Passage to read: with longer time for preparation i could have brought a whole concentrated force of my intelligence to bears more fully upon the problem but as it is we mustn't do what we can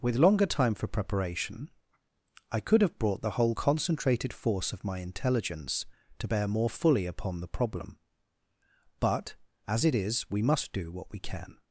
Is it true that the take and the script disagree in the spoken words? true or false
true